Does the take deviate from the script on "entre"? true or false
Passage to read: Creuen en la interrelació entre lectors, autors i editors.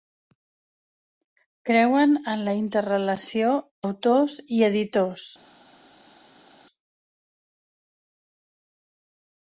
true